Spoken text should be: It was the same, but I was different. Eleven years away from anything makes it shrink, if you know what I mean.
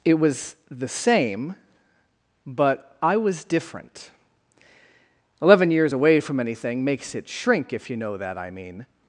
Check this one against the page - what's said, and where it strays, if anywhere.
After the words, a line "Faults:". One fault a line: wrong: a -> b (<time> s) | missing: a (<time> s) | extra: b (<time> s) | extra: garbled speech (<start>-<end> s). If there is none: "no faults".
It was the same, but I was different. Eleven years away from anything makes it shrink, if you know that I mean.
Faults:
wrong: what -> that (8.2 s)